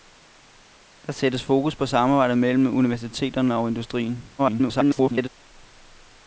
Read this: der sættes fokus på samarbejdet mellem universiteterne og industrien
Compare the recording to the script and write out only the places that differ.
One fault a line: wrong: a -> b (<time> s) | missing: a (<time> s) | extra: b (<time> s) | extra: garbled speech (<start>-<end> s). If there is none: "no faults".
extra: garbled speech (4.4-5.3 s)